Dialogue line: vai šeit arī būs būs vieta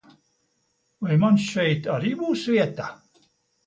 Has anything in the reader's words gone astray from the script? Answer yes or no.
yes